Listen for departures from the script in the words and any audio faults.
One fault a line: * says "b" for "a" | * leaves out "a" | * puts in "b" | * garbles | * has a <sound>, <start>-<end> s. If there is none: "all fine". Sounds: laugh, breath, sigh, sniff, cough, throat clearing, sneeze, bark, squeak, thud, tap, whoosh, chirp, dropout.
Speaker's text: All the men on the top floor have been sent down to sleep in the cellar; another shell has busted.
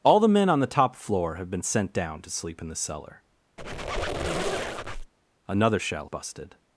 * has a squeak, 3.6-5.1 s
* leaves out "has"